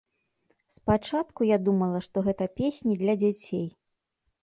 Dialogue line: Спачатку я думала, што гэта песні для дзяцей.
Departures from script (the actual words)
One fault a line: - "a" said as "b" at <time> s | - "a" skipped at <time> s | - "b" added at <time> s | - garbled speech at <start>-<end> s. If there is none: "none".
none